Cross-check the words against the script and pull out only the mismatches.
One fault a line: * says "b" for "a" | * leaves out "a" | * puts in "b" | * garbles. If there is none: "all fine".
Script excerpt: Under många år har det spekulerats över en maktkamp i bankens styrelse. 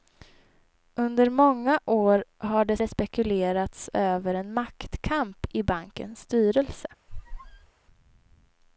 * puts in "det"